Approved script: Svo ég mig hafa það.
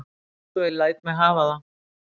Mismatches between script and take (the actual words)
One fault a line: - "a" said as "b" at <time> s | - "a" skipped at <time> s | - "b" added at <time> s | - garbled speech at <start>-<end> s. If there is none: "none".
- "læt" added at 0.8 s